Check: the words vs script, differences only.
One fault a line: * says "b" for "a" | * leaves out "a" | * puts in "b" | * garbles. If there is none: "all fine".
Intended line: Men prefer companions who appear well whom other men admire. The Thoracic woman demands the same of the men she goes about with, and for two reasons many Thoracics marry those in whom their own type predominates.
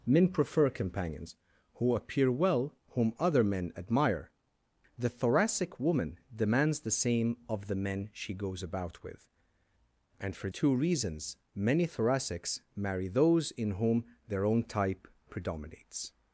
all fine